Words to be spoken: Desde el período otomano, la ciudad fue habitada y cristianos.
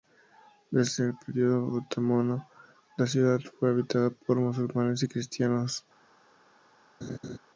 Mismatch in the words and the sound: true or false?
true